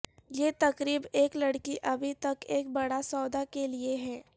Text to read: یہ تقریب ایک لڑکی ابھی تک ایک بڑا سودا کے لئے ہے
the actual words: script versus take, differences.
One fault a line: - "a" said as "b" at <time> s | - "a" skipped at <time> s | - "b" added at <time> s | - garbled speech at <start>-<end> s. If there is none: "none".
none